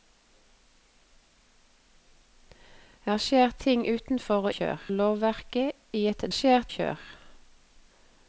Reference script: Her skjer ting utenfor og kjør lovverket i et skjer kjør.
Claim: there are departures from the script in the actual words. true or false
false